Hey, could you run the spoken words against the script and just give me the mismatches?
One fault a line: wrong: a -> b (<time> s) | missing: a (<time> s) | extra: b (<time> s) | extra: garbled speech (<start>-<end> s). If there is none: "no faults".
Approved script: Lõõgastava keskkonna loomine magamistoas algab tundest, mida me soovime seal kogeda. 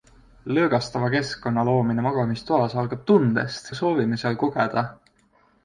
missing: mida (3.7 s)